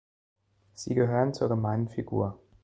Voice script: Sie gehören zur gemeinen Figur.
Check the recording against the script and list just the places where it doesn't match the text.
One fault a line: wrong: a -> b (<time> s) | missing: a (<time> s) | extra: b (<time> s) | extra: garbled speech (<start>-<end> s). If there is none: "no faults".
no faults